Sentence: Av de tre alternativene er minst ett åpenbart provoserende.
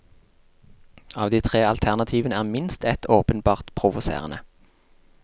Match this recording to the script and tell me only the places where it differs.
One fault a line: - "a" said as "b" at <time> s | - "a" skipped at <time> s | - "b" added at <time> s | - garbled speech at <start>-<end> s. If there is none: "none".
none